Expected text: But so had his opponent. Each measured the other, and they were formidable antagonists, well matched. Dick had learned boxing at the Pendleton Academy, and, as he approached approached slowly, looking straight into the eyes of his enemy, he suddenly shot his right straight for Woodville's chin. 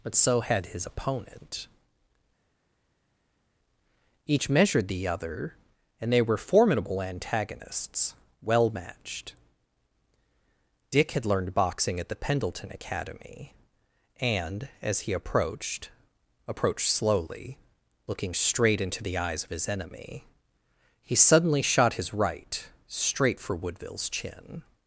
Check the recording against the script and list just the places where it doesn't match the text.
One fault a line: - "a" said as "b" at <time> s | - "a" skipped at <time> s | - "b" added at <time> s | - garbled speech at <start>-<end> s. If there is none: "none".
none